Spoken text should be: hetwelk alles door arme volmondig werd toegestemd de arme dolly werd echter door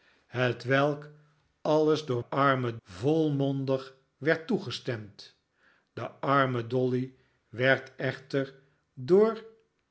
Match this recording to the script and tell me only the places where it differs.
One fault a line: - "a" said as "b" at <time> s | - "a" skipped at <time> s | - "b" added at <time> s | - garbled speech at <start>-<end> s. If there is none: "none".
none